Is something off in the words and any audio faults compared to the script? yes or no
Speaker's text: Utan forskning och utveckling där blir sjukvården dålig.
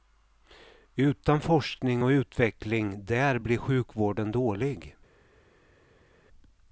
no